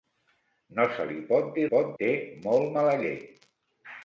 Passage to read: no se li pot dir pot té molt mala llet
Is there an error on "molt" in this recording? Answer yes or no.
no